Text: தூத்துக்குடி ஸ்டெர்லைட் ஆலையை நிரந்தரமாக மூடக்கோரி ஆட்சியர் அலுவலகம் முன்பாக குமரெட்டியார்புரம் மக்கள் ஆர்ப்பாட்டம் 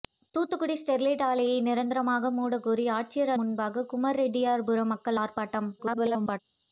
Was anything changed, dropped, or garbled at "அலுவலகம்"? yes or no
yes